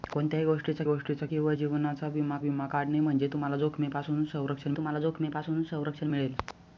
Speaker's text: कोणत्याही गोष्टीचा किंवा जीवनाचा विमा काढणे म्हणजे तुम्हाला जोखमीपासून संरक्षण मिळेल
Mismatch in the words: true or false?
true